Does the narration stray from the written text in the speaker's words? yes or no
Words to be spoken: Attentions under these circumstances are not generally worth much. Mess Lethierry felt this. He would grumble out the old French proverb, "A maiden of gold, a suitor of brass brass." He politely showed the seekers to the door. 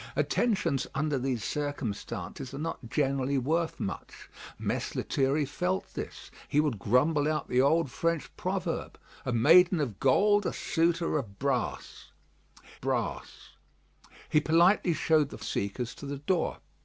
no